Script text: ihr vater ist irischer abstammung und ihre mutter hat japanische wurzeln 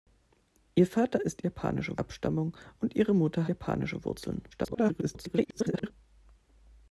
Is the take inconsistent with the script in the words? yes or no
yes